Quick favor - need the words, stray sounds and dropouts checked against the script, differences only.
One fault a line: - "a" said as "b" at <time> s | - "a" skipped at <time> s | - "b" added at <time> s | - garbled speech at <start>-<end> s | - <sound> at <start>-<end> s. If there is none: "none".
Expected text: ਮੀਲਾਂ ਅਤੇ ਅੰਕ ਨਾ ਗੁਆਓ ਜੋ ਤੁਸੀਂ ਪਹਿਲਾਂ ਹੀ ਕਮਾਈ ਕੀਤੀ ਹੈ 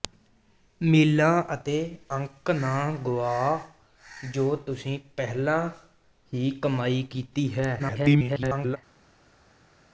- garbled speech at 7.8-8.8 s